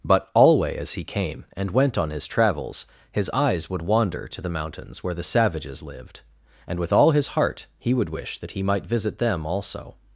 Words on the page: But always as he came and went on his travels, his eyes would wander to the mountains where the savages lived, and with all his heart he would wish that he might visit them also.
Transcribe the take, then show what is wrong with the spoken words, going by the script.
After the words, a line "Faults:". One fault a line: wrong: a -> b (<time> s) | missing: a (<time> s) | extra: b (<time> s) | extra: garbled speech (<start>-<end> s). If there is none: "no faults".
But alway as he came and went on his travels, his eyes would wander to the mountains where the savages lived, and with all his heart he would wish that he might visit them also.
Faults:
wrong: always -> alway (0.3 s)